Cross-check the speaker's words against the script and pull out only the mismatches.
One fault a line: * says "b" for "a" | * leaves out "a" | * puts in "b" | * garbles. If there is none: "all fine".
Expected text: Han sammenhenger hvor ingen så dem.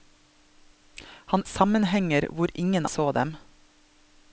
all fine